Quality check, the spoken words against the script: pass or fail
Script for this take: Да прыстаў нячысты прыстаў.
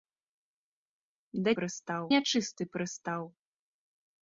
pass